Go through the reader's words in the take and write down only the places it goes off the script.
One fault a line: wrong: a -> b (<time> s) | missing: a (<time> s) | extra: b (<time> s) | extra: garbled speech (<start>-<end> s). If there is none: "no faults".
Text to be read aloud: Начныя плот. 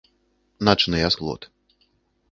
no faults